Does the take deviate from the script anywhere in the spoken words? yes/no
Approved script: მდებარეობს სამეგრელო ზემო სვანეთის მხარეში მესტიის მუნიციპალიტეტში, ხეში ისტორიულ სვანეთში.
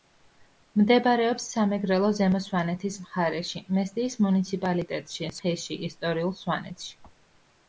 no